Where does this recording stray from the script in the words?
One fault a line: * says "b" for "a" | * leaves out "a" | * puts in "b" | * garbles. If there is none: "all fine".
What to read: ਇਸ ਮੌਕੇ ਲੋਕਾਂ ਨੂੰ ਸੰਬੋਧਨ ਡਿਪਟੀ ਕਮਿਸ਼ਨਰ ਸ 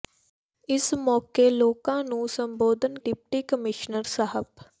all fine